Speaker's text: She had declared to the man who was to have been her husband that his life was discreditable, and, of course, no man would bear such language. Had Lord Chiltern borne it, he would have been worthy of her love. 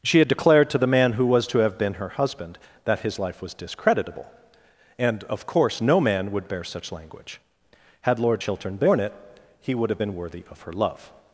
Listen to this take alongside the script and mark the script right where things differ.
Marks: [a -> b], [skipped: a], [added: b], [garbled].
She had declared to the man who was to have been her husband that his life was discreditable, and, of course, no man would bear such language. Had Lord Chiltern borne it, he would have been worthy of her love.